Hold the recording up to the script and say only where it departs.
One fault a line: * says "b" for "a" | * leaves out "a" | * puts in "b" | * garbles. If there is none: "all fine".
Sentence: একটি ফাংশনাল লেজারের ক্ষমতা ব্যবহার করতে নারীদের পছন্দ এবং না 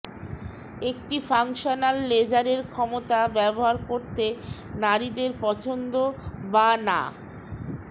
* says "বা" for "এবং"